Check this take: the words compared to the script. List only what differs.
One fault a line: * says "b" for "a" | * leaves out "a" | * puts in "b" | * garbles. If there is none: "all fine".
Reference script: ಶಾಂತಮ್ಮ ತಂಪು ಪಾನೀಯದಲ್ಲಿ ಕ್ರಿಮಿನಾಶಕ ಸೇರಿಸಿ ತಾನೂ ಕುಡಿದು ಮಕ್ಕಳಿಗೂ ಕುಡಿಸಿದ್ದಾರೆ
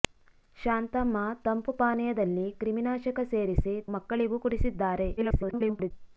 * leaves out "ತಾನೂ ಕುಡಿದು"
* garbles